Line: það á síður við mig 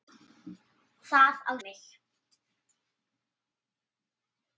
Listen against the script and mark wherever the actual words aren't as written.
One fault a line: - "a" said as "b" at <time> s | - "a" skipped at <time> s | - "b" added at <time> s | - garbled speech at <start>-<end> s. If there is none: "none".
- "síður við" skipped at 1.5 s